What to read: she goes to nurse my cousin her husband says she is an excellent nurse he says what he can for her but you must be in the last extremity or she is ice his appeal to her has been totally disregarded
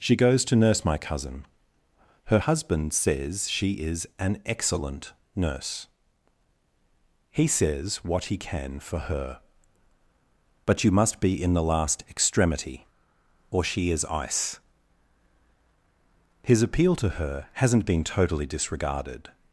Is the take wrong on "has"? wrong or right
wrong